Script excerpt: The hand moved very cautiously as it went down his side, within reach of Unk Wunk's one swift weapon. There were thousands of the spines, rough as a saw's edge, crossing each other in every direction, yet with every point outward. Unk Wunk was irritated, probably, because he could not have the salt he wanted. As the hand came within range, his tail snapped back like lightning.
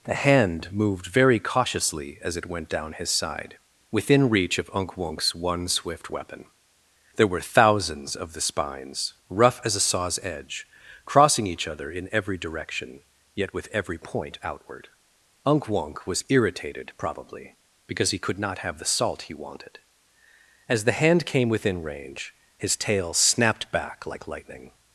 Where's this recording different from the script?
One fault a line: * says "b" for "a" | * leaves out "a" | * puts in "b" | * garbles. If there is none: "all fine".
all fine